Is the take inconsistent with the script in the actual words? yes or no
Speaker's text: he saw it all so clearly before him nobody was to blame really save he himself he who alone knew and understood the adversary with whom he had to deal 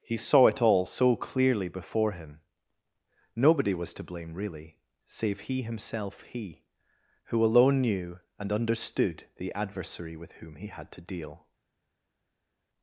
no